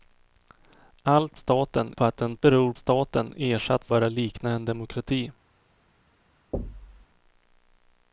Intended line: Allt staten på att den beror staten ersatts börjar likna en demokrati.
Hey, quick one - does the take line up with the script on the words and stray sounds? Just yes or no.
no